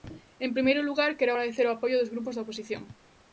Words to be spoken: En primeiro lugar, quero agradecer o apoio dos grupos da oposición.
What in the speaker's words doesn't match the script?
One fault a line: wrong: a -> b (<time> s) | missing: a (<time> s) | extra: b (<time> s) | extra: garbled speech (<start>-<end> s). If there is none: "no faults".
no faults